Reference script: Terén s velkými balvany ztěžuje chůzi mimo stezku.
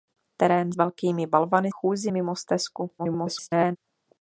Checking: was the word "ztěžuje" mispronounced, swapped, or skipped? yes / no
yes